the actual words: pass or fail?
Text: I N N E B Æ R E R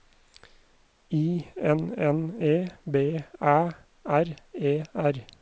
pass